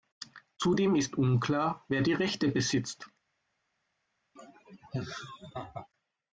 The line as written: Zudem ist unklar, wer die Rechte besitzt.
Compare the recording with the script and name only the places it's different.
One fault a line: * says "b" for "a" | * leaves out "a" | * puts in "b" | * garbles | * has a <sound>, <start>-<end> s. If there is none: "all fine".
* has a laugh, 4.4-5.9 s